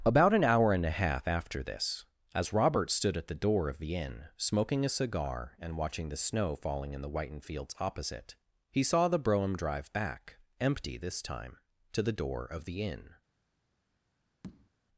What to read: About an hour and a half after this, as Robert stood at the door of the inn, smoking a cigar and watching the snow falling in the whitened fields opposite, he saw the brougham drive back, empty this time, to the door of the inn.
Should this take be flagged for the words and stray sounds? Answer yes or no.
yes